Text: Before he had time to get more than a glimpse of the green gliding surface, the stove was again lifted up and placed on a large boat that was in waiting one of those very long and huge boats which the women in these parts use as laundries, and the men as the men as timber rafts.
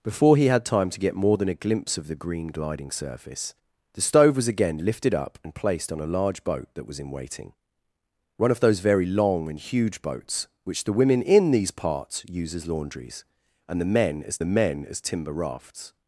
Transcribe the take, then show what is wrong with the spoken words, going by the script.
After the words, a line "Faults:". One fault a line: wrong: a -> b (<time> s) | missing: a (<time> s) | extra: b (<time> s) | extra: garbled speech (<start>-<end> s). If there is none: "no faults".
Before he had time to get more than a glimpse of the green gliding surface, the stove was again lifted up and placed on a large boat that was in waiting one of those very long and huge boats which the women in these parts use as laundries, and the men as the men as timber rafts.
Faults:
no faults